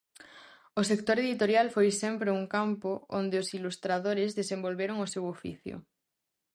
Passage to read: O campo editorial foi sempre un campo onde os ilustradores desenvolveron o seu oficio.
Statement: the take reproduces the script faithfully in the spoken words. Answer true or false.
false